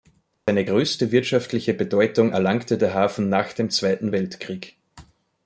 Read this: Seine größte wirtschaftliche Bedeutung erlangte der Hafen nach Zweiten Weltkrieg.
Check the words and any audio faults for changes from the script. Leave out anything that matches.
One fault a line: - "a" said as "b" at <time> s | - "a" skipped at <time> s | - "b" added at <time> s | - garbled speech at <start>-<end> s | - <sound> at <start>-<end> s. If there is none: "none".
- dropout at 0.3-0.5 s
- "dem" added at 3.5 s